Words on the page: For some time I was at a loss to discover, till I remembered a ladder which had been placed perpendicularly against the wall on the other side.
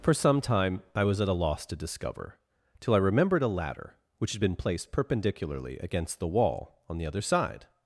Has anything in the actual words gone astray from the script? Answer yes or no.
no